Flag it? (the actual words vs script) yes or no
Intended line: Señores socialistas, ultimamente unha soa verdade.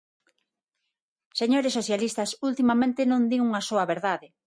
yes